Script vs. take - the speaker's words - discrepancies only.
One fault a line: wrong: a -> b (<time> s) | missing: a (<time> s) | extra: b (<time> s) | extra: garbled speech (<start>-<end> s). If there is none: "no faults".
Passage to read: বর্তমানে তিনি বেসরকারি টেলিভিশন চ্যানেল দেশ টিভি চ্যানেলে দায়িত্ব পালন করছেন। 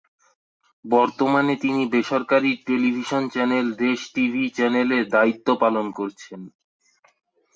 no faults